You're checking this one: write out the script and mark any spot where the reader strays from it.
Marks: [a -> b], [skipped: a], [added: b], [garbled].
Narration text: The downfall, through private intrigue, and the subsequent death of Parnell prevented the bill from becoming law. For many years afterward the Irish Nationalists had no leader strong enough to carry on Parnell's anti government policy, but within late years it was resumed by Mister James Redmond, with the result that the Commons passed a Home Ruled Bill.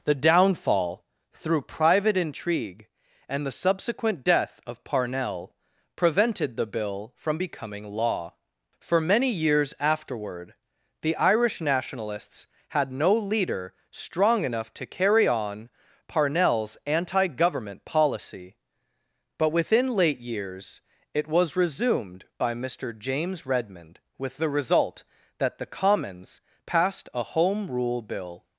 The downfall, through private intrigue, and the subsequent death of Parnell prevented the bill from becoming law. For many years afterward the Irish Nationalists had no leader strong enough to carry on Parnell's anti government policy, but within late years it was resumed by Mister James Redmond, with the result that the Commons passed a Home [Ruled -> Rule] Bill.